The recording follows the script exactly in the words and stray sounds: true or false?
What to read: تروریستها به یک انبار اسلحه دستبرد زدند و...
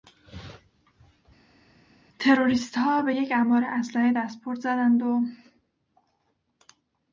true